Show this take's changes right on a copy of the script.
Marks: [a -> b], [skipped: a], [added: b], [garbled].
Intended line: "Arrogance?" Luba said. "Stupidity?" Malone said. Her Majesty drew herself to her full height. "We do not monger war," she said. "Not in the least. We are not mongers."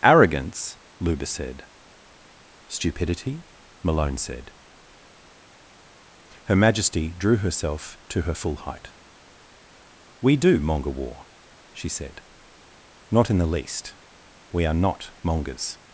"Arrogance?" Luba said. "Stupidity?" Malone said. Her Majesty drew herself to her full height. "We do [skipped: not] monger war," she said. "Not in the least. We are not mongers."